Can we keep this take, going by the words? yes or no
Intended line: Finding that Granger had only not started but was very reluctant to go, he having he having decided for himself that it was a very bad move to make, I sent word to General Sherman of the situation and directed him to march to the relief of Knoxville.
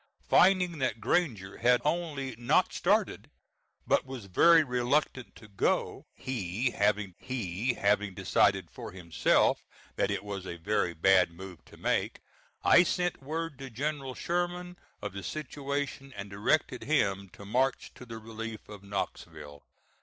yes